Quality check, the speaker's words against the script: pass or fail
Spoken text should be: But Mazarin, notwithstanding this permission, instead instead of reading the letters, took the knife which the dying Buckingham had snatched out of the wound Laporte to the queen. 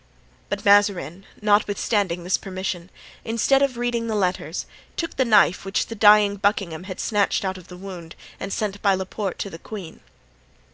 fail